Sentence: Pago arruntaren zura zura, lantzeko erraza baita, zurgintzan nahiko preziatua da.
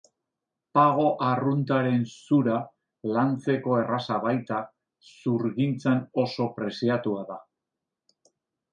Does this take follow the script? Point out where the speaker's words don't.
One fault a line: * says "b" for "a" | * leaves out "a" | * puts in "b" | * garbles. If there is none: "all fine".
* leaves out "zura"
* says "oso" for "nahiko"